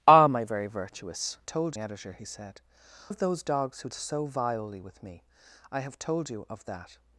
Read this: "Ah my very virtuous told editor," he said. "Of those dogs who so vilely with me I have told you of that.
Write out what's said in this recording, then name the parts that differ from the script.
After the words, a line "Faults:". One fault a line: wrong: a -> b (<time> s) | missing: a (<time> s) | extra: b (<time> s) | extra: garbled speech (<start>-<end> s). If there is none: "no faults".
"Ah my very virtuous told editor," he said. "Of those dogs who so vilely with me I have told you of that.
Faults:
no faults